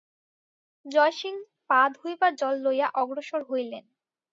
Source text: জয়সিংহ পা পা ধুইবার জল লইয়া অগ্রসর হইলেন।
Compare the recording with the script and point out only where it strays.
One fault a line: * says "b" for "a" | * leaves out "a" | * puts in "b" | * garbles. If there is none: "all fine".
* leaves out "পা"